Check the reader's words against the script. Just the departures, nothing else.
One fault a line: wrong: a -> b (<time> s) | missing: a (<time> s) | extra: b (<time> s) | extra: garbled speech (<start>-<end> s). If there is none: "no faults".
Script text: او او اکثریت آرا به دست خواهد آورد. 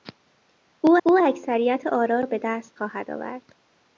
no faults